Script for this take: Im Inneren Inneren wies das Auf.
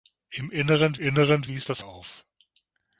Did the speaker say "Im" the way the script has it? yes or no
yes